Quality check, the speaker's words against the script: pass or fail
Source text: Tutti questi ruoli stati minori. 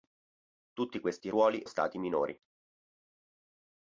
pass